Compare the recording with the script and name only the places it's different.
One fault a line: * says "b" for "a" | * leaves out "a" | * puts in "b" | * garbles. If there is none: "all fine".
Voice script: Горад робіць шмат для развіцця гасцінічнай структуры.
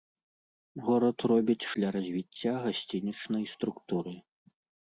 * leaves out "шмат"